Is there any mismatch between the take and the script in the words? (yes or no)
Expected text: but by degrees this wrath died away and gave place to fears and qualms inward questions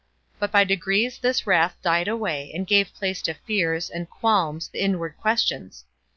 no